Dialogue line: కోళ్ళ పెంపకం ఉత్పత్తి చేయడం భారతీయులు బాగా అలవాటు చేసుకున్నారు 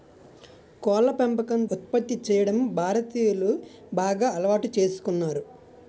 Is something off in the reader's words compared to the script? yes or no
no